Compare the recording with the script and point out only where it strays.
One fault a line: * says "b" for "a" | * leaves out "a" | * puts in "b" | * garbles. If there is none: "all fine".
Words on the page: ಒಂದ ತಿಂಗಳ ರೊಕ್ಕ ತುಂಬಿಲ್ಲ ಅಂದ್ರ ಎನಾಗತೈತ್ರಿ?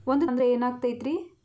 * leaves out "ತಿಂಗಳ ರೊಕ್ಕ ತುಂಬಿಲ್ಲ"